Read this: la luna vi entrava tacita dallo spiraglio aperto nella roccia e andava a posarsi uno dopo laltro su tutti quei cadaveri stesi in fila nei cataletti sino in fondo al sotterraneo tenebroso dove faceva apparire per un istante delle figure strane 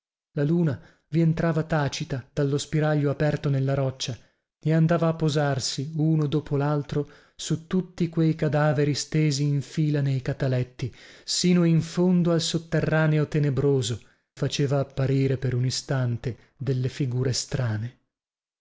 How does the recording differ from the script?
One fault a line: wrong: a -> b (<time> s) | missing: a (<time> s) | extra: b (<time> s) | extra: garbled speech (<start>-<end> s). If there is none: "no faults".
missing: dove (14.0 s)